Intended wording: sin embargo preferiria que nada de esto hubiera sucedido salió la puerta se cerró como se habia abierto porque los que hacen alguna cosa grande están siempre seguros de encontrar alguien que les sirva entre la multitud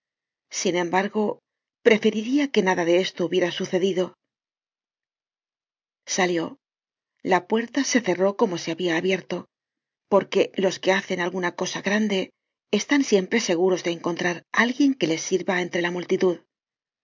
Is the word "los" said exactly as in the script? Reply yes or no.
yes